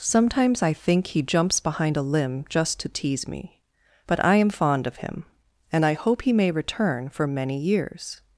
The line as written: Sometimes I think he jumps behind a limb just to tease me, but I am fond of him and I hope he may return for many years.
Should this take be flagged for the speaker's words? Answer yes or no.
no